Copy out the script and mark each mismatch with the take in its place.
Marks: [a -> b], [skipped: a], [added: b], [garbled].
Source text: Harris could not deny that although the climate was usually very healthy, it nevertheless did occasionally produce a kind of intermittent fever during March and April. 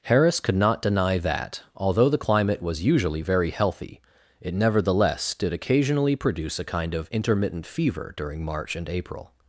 Harris could not deny that although the climate was usually very healthy, it nevertheless did occasionally produce a kind of intermittent fever during March and April.